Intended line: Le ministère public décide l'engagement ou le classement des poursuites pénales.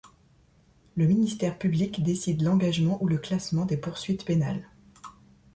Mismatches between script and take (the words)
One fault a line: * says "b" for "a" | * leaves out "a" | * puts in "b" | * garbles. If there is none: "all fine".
all fine